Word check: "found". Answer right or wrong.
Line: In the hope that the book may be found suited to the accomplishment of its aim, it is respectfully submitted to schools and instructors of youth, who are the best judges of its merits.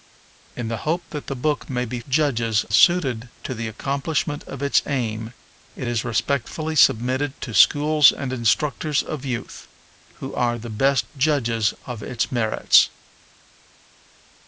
wrong